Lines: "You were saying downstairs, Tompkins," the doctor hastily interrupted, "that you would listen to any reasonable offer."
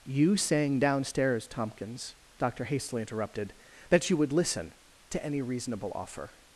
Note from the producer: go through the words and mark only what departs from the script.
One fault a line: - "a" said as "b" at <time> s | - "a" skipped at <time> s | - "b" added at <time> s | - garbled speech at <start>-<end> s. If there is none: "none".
- "were" skipped at 0.3 s
- "the" skipped at 2.1 s